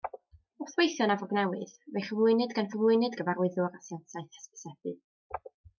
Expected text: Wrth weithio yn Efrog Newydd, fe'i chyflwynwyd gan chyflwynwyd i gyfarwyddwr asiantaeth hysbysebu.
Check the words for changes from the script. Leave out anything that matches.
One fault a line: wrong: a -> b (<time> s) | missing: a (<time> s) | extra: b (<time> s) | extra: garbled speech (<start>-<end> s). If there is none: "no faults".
no faults